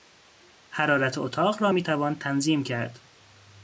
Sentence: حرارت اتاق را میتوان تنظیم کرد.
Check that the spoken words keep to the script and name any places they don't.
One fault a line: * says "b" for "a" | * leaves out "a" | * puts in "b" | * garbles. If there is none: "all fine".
all fine